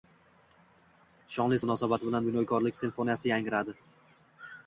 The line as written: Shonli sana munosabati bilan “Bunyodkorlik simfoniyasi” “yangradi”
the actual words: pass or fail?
fail